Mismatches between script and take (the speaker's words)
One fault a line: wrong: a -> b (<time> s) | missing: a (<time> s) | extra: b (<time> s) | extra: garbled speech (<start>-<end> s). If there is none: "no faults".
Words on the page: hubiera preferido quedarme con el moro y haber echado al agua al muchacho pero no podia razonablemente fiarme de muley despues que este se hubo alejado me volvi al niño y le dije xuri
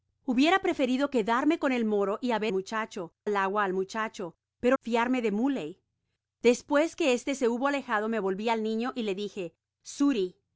wrong: echado -> muchacho (2.5 s)
missing: no podia razonablemente (4.8 s)